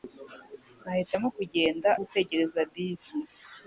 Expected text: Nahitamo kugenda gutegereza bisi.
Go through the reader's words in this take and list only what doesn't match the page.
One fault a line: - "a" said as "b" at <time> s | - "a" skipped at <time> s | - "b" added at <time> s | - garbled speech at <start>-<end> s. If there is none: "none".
none